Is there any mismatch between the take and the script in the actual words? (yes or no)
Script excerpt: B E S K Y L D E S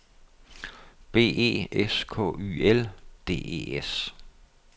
no